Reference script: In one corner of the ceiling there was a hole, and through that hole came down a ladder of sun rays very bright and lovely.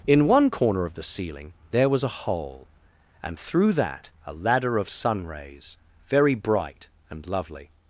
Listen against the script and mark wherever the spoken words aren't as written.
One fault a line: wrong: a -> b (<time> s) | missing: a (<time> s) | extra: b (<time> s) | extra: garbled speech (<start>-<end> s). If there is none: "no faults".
missing: hole came down (4.1 s)